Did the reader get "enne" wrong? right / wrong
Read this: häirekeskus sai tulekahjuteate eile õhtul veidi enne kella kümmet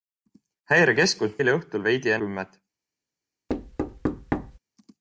wrong